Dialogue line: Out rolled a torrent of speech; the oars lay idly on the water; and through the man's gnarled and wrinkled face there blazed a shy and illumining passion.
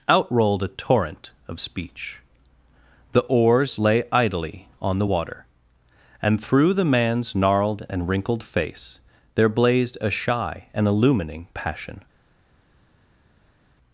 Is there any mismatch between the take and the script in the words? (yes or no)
no